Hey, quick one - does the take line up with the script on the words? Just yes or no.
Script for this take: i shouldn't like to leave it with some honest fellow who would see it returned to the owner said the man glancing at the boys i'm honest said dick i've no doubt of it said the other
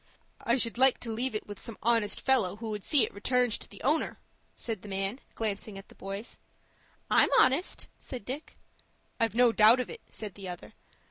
no